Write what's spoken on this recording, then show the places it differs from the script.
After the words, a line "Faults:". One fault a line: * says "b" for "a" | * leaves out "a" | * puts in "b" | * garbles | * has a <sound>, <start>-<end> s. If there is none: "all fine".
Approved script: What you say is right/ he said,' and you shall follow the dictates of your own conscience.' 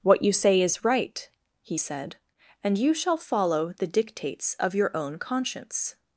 What you say is right/ he said,' and you shall follow the dictates of your own conscience.'
Faults:
all fine